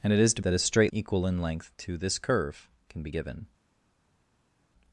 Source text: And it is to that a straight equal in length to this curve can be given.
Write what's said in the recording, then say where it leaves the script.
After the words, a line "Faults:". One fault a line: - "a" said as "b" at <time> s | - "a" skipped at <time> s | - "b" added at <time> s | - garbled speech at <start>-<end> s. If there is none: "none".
And it is to that a straight equal in length to this curve can be given.
Faults:
none